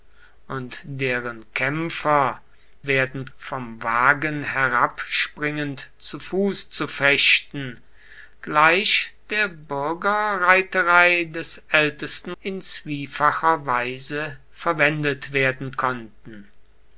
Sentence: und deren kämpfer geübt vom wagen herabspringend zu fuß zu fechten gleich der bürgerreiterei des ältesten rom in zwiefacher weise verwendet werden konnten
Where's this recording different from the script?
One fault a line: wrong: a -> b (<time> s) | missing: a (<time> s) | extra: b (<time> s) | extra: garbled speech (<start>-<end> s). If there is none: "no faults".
wrong: geübt -> werden (2.9 s)
missing: rom (12.4 s)